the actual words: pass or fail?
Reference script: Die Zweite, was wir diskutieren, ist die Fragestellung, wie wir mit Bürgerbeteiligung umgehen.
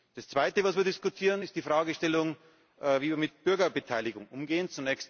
fail